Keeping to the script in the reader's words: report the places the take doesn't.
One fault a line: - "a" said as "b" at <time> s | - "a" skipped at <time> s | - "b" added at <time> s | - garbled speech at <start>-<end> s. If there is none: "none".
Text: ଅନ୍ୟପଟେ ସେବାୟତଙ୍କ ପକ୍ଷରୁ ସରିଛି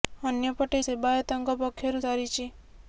none